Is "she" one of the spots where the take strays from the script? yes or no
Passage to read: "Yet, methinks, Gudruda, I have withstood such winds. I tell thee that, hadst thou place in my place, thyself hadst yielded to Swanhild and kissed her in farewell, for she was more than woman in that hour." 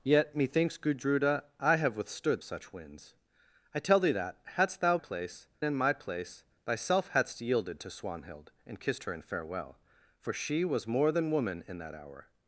no